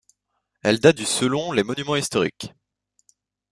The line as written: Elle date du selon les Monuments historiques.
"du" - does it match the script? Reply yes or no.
yes